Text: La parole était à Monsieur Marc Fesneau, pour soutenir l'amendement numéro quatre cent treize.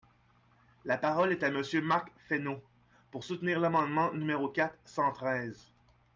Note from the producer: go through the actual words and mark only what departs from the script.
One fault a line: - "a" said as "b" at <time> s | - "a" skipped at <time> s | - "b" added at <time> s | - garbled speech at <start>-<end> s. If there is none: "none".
- "était" said as "est" at 1.3 s